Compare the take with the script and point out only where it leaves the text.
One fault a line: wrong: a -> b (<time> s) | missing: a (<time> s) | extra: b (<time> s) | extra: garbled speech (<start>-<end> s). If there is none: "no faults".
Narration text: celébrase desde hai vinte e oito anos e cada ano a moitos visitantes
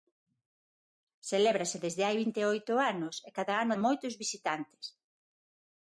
no faults